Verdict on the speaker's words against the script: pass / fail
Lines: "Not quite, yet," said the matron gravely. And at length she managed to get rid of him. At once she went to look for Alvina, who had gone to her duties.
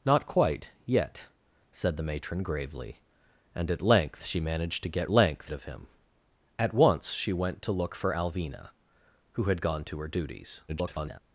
fail